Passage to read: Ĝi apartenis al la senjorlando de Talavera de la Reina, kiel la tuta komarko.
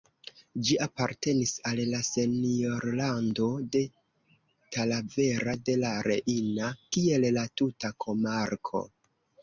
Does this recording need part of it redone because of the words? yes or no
no